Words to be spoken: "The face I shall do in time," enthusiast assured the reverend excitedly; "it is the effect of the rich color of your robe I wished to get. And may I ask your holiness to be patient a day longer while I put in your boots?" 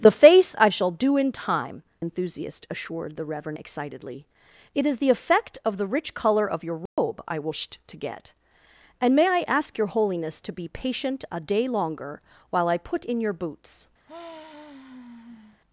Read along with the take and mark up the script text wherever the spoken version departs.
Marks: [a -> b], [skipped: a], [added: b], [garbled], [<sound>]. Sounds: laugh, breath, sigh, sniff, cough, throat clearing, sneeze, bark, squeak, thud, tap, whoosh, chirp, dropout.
"The face I shall do in time," enthusiast assured the reverend excitedly; "it is the effect of the rich color of your robe [dropout] I wished to get. And may I ask your holiness to be patient a day longer while I put in your boots?" [sigh]